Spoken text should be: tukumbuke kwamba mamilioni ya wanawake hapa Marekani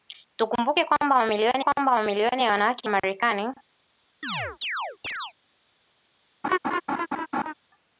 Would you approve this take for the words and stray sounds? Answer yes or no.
no